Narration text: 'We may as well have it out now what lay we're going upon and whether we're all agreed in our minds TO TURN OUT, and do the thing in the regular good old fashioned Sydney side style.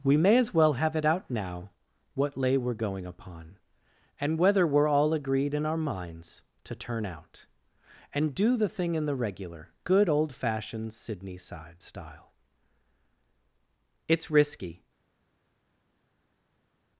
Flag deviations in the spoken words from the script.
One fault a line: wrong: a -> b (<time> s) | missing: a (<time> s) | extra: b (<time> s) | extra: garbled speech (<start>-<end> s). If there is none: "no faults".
extra: It's risky (14.1 s)